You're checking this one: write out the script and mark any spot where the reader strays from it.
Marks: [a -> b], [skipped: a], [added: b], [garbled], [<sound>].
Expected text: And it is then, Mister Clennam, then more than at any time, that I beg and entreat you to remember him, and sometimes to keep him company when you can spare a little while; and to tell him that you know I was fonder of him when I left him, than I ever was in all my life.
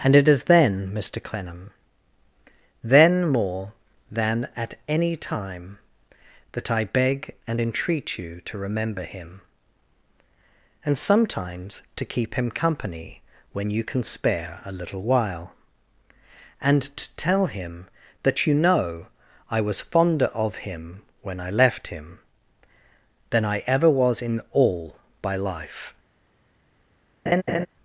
And it is then, Mister Clennam, then more than at any time, that I beg and entreat you to remember him, and sometimes to keep him company when you can spare a little while; and to tell him that you know I was fonder of him when I left him, than I ever was in all [my -> by] life. [laugh]